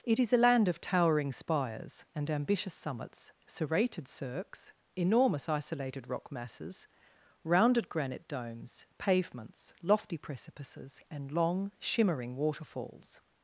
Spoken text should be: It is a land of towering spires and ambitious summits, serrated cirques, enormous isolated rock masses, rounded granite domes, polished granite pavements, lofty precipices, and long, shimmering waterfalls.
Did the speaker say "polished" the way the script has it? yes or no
no